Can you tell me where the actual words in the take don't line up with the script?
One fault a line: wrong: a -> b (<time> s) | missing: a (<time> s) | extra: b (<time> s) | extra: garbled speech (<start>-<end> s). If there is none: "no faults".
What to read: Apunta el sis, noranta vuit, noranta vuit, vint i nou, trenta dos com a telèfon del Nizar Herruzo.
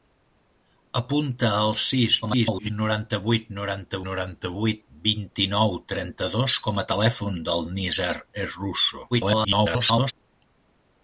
extra: garbled speech (2.2-2.7 s)
extra: noranta (4.1 s)
extra: garbled speech (9.1-10.1 s)